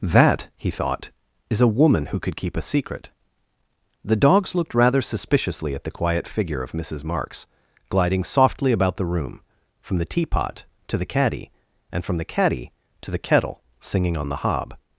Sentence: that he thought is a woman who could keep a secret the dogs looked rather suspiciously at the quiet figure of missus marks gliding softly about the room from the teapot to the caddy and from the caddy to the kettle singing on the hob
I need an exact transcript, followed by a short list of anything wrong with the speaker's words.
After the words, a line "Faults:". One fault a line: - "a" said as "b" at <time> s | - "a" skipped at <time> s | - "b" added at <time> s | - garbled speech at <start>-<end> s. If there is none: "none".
that he thought is a woman who could keep a secret the dogs looked rather suspiciously at the quiet figure of missus marks gliding softly about the room from the teapot to the caddy and from the caddy to the kettle singing on the hob
Faults:
none